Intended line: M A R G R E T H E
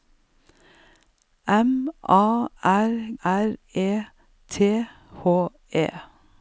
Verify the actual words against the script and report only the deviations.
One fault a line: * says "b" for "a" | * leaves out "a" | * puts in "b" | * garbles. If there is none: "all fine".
* leaves out "G"